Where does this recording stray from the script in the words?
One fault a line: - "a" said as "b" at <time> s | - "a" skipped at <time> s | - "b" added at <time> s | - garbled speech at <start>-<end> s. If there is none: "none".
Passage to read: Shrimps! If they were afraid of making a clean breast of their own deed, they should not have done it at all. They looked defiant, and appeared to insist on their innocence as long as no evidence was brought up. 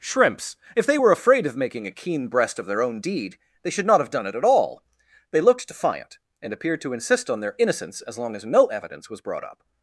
- "clean" said as "keen" at 1.9 s